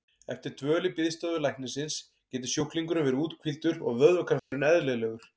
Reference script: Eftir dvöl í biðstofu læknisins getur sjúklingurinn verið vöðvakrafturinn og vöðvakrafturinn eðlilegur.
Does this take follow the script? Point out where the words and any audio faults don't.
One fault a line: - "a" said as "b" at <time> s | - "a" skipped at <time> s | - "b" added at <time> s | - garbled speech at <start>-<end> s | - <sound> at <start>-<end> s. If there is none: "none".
- "vöðvakrafturinn" said as "úthvíldur" at 3.2 s
- dropout at 4.4-4.5 s